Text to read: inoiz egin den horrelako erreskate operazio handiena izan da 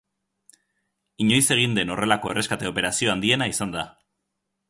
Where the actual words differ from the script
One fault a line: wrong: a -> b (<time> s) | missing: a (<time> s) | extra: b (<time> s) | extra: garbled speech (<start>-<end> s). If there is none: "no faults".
no faults